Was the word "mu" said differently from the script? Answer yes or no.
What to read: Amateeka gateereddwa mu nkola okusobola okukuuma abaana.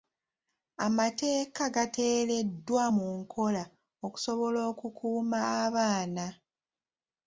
no